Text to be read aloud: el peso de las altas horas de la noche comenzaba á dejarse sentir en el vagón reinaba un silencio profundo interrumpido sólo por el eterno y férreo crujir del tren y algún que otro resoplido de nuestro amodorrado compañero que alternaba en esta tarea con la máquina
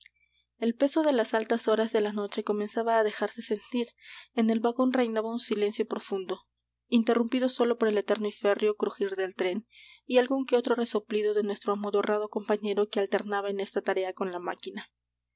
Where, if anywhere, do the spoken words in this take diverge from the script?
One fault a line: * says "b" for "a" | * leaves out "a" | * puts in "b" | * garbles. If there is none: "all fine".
all fine